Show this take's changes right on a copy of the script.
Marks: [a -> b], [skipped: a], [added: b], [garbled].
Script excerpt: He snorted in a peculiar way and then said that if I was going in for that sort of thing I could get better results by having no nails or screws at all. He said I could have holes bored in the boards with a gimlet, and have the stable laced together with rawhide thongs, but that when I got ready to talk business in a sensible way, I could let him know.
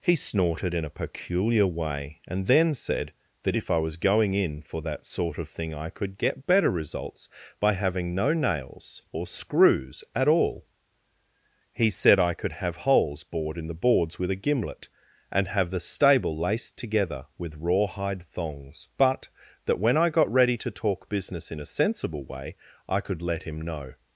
He snorted in a peculiar way and then said that if I was going in for that sort of thing I could get better results by having no nails or screws at all. He said I could have holes bored in the boards with a gimlet, and have the stable laced together with rawhide thongs, but that when I got ready to talk business in a sensible way, I could let him know.